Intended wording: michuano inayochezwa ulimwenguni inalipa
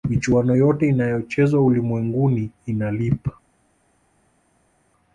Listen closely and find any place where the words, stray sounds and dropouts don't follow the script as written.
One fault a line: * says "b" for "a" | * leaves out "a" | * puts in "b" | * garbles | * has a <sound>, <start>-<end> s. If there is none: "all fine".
* puts in "yote"